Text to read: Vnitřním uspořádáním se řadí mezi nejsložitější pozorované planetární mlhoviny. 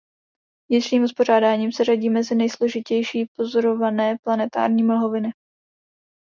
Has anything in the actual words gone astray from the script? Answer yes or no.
no